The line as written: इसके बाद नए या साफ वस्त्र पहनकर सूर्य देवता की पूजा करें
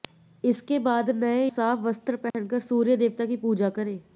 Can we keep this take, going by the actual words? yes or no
no